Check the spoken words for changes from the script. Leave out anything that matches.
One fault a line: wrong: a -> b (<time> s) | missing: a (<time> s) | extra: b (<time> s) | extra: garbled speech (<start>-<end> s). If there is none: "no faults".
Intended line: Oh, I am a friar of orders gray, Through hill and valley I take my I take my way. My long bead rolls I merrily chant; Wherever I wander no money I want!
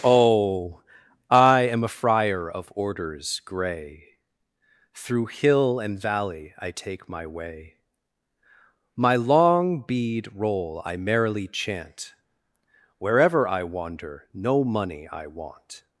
missing: I take my (7.3 s)
wrong: rolls -> roll (10.3 s)